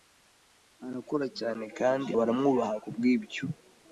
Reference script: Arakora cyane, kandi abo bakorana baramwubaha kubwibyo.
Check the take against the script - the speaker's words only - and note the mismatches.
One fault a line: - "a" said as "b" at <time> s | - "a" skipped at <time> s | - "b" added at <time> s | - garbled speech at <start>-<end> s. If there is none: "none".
- "abo bakorana" skipped at 2.1 s